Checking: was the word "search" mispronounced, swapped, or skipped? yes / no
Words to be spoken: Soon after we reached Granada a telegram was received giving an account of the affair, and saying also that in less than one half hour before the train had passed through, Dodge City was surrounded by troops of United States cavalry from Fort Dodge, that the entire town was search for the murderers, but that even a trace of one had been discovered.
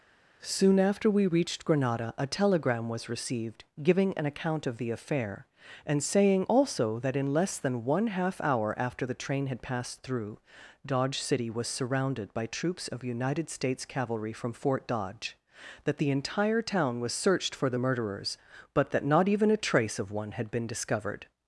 yes